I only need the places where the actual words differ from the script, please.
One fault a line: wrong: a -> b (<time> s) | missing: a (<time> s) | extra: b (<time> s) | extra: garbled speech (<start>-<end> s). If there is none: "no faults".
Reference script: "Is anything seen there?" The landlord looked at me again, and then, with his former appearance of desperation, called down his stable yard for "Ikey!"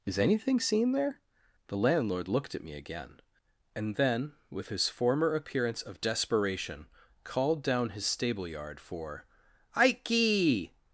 no faults